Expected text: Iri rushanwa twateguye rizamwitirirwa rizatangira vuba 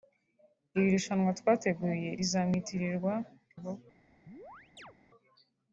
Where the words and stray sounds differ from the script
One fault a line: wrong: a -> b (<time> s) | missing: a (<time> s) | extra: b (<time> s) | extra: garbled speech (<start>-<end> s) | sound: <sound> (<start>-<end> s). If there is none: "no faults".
missing: rizatangira (3.1 s)
sound: chirp (4.3-5.0 s)